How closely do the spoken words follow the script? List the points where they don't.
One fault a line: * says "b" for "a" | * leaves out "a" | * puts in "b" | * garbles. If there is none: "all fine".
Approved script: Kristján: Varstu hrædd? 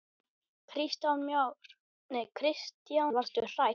all fine